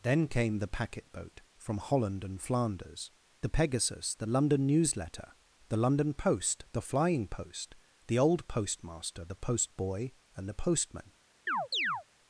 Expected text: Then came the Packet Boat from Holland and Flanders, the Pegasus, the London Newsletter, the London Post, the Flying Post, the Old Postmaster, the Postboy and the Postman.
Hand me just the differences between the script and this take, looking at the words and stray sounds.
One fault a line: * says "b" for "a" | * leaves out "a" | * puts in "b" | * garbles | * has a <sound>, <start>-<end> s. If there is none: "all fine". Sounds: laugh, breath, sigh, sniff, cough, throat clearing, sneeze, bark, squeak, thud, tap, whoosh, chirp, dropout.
* has a chirp, 11.5-12.0 s